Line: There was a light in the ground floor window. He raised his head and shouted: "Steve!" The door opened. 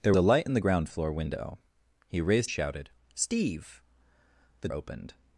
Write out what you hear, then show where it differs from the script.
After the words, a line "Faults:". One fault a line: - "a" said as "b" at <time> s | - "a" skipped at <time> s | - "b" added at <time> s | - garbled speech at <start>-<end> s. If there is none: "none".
There a light in the ground floor window. He raised shouted: "Steve!" The opened.
Faults:
- "was" skipped at 0.1 s
- "his head and" skipped at 2.5 s
- "door" skipped at 4.7 s